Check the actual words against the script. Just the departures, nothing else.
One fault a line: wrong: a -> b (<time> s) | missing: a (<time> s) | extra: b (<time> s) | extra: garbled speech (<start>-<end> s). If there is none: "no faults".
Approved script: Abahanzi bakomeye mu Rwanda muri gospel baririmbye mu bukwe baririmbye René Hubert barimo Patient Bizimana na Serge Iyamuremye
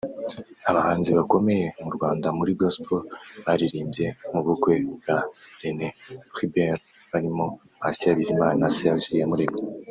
wrong: baririmbye -> bwa (5.0 s)